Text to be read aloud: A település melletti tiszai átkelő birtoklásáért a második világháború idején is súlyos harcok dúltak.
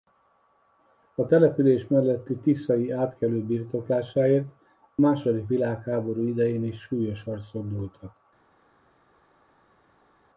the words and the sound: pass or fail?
pass